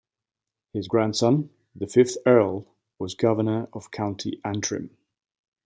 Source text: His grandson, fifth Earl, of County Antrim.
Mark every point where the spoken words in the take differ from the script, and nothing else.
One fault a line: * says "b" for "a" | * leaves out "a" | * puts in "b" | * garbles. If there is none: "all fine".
* puts in "the"
* puts in "was Governor"